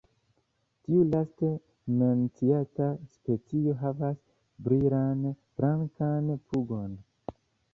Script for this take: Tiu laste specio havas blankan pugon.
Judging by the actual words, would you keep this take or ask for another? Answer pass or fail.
fail